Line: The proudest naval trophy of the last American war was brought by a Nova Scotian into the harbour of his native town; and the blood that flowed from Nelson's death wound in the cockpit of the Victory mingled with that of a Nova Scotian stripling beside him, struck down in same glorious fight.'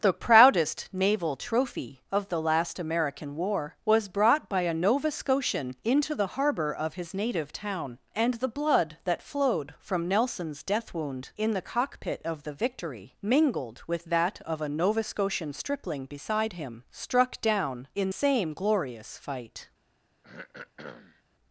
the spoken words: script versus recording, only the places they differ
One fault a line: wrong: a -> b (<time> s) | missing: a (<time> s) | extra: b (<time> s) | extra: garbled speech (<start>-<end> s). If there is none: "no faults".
no faults